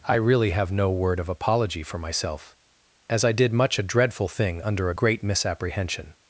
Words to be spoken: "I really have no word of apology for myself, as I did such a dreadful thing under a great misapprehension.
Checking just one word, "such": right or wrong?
wrong